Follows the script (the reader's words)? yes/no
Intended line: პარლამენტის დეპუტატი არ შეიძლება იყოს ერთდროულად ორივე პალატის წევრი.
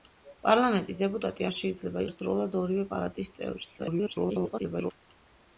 no